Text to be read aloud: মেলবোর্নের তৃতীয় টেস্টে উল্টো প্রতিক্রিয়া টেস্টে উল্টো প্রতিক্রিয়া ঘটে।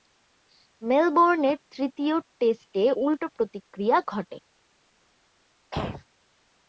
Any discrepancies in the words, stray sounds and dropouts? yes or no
yes